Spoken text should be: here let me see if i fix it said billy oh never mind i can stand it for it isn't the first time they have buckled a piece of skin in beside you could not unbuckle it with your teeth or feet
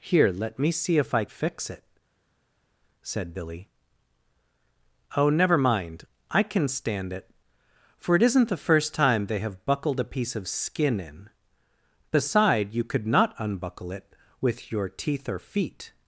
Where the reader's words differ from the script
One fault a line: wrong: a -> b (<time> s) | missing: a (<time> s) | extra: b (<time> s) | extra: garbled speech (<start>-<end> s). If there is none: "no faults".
no faults